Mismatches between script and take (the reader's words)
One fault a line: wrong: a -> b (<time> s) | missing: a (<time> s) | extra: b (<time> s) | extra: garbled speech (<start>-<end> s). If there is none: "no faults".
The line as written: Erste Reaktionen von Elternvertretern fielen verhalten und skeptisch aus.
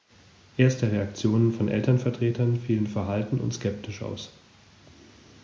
no faults